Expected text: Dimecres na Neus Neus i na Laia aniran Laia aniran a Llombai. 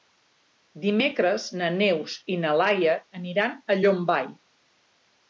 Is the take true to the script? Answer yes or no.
no